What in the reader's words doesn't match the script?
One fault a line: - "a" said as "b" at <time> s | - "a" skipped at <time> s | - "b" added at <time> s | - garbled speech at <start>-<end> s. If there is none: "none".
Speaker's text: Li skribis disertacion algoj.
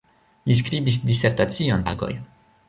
none